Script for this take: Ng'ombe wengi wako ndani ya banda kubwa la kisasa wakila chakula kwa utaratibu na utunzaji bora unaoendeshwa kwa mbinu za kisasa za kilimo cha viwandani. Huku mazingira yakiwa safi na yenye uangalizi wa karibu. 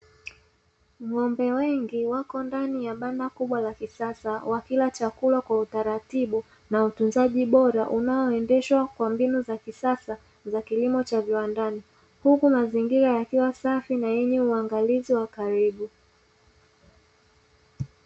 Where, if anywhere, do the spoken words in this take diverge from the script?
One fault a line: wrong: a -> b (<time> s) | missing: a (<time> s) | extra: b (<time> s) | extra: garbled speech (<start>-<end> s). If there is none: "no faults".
no faults